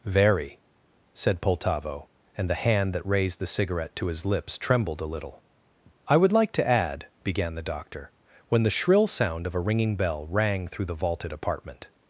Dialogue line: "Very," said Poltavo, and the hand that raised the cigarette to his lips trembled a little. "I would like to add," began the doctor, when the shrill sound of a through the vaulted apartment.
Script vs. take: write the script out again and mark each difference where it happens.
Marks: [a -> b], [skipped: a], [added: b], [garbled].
"Very," said Poltavo, and the hand that raised the cigarette to his lips trembled a little. "I would like to add," began the doctor, when the shrill sound of a [added: ringing bell rang] through the vaulted apartment.